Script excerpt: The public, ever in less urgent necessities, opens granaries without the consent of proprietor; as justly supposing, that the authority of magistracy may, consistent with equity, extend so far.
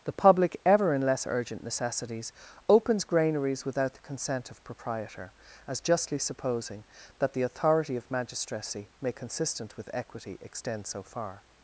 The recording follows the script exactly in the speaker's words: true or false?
true